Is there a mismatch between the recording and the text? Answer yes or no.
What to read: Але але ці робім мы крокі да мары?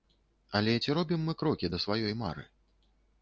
yes